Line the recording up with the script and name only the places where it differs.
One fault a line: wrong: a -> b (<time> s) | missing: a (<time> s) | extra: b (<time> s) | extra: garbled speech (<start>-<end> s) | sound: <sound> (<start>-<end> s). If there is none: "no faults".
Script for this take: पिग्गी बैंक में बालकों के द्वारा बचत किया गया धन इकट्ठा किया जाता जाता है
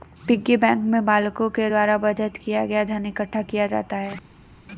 missing: जाता (4.0 s)